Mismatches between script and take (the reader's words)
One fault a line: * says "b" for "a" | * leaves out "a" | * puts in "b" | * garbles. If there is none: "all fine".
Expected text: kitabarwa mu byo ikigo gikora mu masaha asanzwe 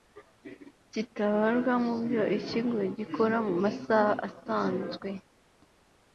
all fine